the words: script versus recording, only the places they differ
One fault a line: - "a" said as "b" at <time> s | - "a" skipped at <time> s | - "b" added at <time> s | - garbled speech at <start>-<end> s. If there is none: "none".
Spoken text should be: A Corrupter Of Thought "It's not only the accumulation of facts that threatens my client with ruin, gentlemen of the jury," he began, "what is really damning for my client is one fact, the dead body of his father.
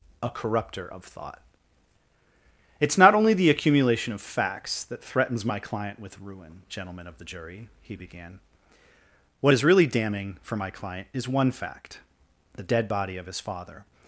none